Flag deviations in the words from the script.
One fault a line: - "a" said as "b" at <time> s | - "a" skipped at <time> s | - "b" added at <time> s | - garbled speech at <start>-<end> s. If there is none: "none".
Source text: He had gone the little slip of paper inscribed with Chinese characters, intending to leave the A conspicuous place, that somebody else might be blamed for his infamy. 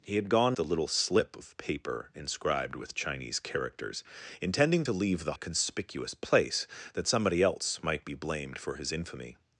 none